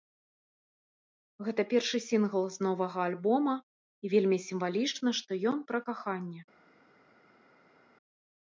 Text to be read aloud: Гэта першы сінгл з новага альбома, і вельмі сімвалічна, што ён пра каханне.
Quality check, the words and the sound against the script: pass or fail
pass